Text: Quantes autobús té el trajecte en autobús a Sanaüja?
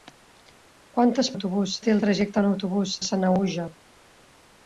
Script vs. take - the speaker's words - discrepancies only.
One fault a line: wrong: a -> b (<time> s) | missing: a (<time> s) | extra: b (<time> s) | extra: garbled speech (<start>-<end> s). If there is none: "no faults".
no faults